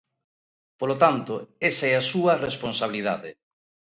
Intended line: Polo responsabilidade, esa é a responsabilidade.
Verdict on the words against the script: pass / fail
fail